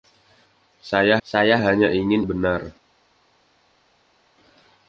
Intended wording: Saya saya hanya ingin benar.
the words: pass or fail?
pass